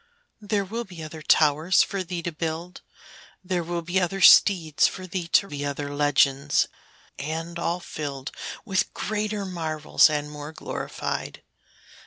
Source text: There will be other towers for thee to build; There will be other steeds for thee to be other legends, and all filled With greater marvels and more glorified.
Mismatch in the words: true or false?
false